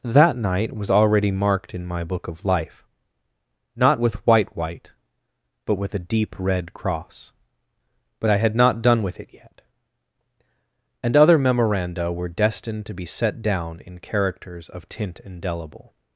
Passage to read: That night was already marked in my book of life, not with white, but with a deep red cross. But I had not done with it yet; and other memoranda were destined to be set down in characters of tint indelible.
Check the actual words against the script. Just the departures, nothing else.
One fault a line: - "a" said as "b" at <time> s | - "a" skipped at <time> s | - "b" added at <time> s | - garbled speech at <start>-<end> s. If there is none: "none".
- "white" added at 4.5 s